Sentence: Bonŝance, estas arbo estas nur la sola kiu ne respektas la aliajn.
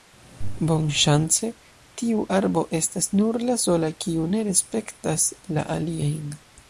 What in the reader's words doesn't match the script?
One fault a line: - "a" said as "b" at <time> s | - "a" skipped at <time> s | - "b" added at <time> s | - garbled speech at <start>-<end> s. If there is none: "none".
- "estas" said as "tiu" at 2.0 s